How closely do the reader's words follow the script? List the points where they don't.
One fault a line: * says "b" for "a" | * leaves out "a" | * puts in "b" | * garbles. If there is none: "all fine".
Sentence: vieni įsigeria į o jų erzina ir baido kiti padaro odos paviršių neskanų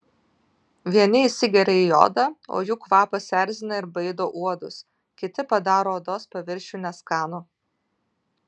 * puts in "odą"
* puts in "kvapas"
* puts in "uodus"